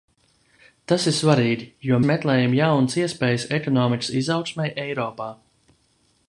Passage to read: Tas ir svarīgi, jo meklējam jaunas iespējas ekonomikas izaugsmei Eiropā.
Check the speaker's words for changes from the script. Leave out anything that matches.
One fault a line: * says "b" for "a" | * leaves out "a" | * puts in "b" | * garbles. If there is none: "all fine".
all fine